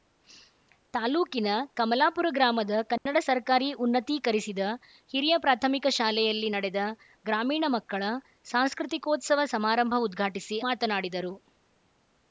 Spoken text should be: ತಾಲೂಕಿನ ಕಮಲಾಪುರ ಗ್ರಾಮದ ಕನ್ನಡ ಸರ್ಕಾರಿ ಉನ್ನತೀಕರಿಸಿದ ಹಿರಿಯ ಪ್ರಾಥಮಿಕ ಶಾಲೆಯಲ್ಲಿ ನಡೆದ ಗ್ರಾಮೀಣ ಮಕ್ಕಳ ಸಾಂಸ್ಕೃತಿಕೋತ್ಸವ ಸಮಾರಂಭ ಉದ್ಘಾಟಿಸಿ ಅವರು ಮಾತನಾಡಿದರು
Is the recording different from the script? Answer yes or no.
yes